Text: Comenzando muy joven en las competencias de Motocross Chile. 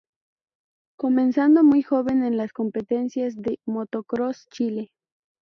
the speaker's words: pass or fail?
pass